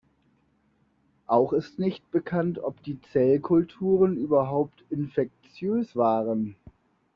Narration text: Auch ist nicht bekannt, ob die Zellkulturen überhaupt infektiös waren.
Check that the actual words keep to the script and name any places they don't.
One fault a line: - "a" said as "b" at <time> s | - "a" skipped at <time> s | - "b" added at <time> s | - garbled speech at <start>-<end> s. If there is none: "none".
none